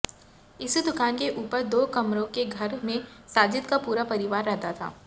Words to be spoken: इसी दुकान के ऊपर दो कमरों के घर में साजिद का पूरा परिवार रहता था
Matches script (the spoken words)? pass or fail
pass